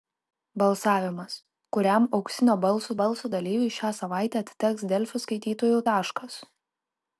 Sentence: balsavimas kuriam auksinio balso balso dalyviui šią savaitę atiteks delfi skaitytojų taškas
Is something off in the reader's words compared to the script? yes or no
no